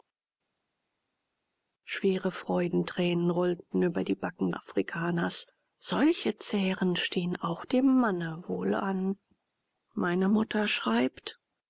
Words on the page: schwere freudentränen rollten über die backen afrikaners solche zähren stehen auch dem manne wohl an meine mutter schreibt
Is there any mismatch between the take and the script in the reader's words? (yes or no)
no